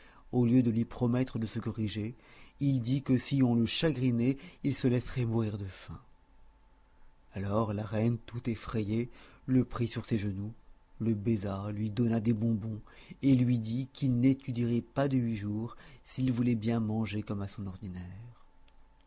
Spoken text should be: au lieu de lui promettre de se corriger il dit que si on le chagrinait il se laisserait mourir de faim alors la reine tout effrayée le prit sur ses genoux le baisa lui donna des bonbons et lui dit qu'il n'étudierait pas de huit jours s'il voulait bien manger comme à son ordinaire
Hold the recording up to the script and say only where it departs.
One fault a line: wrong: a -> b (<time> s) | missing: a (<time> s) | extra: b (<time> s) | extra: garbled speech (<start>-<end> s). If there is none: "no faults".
no faults